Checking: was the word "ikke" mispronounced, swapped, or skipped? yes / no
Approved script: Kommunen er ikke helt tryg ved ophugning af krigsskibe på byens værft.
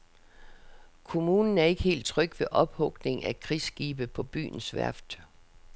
no